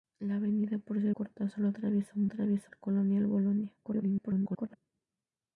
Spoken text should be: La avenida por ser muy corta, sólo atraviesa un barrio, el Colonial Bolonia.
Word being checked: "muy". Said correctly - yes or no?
no